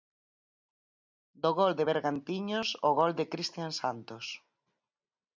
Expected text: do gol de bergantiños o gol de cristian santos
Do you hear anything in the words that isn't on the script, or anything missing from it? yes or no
no